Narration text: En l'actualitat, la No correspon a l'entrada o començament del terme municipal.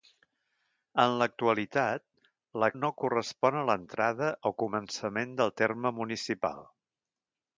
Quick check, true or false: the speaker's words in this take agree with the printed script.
true